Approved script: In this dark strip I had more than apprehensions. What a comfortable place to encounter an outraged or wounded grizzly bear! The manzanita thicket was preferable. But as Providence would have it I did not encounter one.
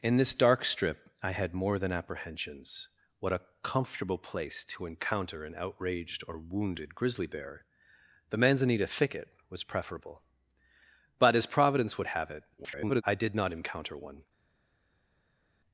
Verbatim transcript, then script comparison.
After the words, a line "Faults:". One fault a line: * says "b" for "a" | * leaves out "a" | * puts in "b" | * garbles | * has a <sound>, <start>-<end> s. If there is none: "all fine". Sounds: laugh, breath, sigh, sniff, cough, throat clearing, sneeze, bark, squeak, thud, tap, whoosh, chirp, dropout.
In this dark strip I had more than apprehensions. What a comfortable place to encounter an outraged or wounded grizzly bear! The manzanita thicket was preferable. But as Providence would have it [garbled] I did not encounter one.
Faults:
* garbles